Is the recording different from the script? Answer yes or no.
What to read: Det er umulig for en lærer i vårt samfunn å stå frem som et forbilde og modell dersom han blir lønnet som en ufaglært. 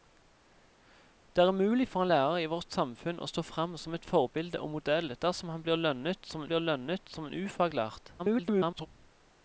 yes